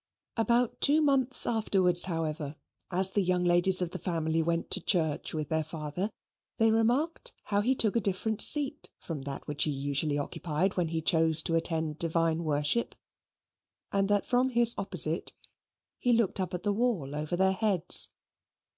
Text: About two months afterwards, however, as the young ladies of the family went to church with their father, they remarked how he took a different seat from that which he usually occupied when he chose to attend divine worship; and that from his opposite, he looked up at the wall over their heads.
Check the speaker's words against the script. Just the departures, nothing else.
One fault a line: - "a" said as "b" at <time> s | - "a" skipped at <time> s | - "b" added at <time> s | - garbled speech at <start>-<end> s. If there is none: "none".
none